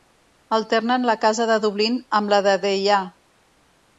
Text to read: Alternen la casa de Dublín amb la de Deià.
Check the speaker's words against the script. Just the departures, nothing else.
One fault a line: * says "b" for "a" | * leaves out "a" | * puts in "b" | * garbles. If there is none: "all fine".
all fine